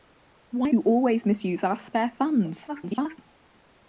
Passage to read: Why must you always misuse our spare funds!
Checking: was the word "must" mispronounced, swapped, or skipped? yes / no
yes